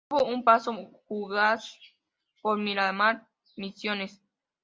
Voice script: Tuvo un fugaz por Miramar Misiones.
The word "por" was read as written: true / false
true